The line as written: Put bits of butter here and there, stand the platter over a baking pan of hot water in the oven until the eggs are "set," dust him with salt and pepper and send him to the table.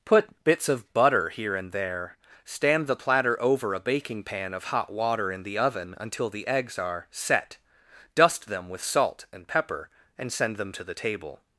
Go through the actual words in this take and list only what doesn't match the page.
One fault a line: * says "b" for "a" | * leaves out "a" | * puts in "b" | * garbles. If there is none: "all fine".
* says "them" for "him"
* says "them" for "him"